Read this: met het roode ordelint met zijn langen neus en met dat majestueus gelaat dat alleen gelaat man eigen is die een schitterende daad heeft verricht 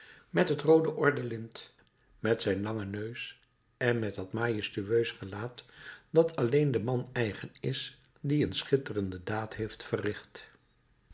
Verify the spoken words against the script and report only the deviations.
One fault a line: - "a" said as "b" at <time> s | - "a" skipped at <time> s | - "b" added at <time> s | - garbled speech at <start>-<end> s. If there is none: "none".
- "gelaat" said as "den" at 6.7 s